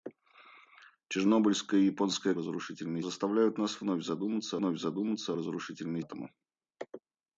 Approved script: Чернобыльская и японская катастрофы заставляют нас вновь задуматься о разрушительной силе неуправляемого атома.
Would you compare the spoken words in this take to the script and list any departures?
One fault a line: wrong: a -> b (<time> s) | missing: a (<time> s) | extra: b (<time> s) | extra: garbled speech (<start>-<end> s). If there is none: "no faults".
wrong: катастрофы -> разрушительной (2.4 s)
extra: вновь задуматься (4.6 s)
missing: силе неуправляемого (6.0 s)